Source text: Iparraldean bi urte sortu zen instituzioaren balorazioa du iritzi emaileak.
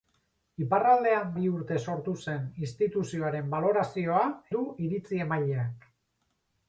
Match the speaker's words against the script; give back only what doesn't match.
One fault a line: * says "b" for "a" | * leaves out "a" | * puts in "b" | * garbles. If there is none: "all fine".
all fine